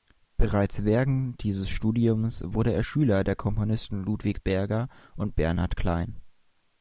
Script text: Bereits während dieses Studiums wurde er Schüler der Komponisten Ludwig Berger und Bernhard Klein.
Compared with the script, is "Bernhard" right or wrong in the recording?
right